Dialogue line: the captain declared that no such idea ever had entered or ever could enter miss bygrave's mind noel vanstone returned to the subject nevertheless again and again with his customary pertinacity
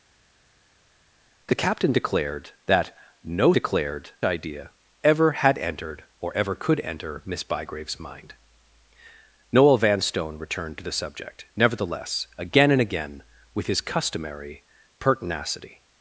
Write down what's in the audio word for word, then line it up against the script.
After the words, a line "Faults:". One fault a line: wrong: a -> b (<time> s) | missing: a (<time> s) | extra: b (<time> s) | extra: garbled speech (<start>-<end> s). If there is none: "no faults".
the captain declared that no declared idea ever had entered or ever could enter miss bygrave's mind noel vanstone returned to the subject nevertheless again and again with his customary pertinacity
Faults:
wrong: such -> declared (3.5 s)